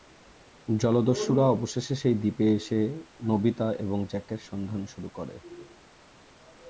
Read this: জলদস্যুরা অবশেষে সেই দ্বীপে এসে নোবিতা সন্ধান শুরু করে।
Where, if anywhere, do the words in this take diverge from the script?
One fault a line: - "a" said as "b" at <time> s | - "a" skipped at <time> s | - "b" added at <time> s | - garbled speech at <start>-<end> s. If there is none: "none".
- "এবং জ্যাকের" added at 3.8 s